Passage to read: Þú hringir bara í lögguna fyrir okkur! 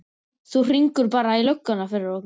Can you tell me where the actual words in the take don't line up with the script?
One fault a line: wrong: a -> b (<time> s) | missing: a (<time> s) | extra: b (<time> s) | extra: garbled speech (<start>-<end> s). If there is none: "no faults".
no faults